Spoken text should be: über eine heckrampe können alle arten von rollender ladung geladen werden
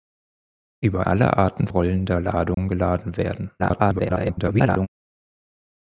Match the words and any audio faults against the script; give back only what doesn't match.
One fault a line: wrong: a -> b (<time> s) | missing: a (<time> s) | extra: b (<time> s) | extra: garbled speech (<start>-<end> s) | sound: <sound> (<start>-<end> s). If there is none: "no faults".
missing: eine heckrampe können (1.0 s)
missing: von (1.7 s)
sound: dropout (2.5-2.6 s)
extra: garbled speech (3.6-4.9 s)